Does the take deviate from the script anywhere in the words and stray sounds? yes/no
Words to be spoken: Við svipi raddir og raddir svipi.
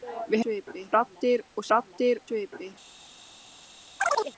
yes